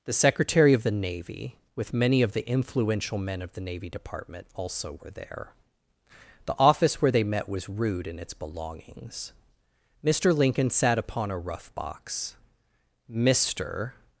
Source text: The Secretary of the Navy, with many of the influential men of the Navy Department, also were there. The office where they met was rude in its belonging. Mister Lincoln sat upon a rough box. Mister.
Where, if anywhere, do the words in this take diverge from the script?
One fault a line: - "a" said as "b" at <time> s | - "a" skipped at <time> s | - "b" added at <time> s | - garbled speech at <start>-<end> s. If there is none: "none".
- "belonging" said as "belongings" at 8.3 s